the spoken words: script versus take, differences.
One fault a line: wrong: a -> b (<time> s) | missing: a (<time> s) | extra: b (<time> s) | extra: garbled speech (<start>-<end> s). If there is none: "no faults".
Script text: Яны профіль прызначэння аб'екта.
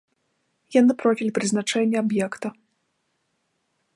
no faults